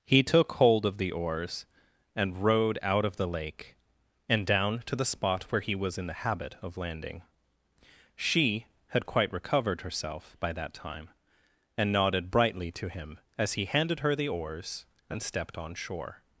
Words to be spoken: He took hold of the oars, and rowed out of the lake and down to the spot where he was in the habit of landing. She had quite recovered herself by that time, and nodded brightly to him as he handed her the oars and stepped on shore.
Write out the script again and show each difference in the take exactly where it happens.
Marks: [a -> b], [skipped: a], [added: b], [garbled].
He took hold of the oars, and rowed out of the lake and down to the spot where he was in the habit of landing. She had quite recovered herself by that time, and nodded brightly to him as he handed her the oars and stepped on shore.